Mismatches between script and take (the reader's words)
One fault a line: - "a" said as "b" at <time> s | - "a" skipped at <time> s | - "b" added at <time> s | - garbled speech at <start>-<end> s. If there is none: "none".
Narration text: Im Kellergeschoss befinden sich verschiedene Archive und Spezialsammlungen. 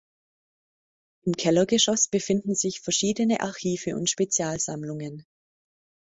none